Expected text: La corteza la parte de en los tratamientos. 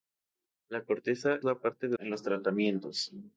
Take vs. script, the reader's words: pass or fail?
pass